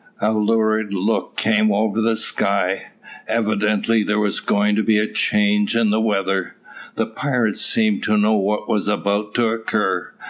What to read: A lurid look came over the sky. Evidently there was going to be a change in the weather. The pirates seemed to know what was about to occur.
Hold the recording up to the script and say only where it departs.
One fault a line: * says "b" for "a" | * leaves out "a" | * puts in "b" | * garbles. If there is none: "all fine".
all fine